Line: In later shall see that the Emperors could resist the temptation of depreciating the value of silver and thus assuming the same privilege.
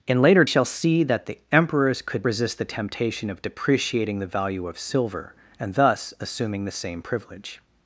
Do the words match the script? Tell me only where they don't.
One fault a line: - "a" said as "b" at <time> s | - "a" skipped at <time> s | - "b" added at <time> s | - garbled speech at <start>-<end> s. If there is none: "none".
none